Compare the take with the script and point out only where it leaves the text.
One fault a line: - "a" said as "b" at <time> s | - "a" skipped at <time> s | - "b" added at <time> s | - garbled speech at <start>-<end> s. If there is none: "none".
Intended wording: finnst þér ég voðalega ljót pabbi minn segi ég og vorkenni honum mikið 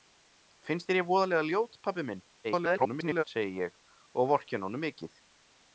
- garbled speech at 2.4-3.2 s